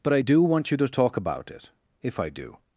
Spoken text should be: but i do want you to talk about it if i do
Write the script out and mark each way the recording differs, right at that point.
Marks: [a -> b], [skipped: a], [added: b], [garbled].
but i do want you to talk about it if i do